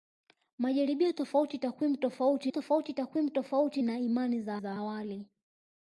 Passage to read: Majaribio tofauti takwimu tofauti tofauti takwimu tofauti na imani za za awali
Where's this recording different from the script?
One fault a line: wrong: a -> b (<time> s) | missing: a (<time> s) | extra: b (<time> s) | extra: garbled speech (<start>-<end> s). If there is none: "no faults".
no faults